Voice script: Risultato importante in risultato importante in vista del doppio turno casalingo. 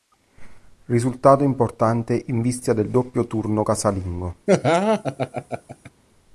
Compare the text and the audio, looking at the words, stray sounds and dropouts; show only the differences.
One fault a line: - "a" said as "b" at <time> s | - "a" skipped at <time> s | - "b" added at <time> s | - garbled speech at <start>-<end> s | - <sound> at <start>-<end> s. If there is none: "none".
- "risultato importante in" skipped at 2.4 s
- laugh at 4.5-5.9 s